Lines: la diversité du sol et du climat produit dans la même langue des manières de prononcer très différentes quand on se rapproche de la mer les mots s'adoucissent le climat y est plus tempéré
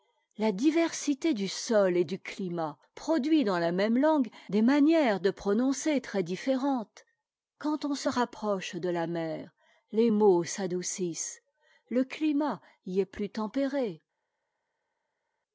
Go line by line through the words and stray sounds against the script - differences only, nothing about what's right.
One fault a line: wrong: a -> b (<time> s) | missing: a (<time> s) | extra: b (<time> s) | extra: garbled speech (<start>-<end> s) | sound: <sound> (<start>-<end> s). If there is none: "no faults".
no faults